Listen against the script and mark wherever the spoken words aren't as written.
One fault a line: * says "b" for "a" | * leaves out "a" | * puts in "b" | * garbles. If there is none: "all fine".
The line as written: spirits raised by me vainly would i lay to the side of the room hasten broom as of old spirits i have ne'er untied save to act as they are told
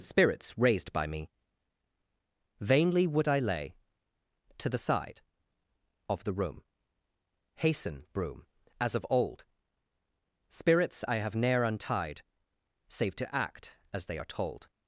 all fine